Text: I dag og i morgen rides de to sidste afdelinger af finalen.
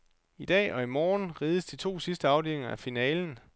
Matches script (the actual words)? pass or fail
pass